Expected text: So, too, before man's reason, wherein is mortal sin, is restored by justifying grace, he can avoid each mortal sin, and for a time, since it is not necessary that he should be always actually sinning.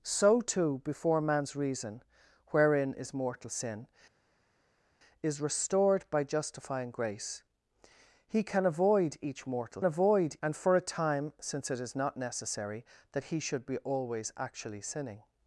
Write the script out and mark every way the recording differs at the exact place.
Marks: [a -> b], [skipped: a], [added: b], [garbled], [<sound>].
So, too, before man's reason, wherein is mortal sin, is restored by justifying grace, he can avoid each mortal [sin, -> avoid] and for a time, since it is not necessary that he should be always actually sinning.